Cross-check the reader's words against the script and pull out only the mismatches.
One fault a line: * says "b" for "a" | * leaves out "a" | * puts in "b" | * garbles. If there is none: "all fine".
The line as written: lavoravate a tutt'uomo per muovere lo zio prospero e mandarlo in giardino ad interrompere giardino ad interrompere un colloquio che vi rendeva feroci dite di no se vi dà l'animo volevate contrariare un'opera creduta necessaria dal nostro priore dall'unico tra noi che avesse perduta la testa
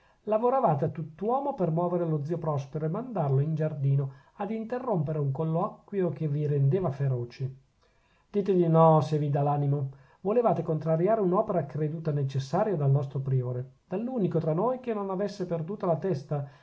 * leaves out "giardino ad interrompere"
* puts in "non"